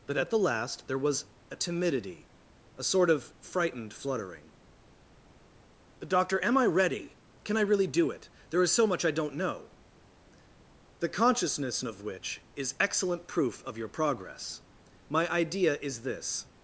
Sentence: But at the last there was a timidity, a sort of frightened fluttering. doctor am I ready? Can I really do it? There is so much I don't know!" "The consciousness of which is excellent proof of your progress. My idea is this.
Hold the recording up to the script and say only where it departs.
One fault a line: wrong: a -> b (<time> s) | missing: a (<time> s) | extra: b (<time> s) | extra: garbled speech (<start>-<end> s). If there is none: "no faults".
no faults